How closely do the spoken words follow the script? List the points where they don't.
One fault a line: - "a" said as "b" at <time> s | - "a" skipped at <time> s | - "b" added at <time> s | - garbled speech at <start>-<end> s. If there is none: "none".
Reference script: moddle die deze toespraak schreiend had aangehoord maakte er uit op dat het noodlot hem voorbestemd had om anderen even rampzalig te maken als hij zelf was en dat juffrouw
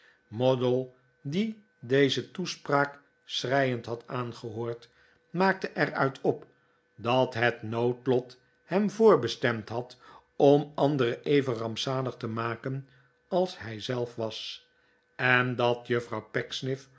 none